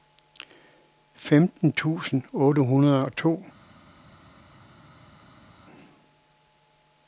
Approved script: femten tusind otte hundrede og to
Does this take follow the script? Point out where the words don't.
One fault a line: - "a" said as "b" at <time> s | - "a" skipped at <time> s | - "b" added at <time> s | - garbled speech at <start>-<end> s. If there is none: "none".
none